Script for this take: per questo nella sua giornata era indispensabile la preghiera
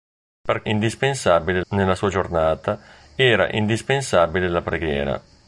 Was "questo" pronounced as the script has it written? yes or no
no